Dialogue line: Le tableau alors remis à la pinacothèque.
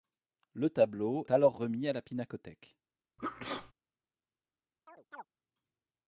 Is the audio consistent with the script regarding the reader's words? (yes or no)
yes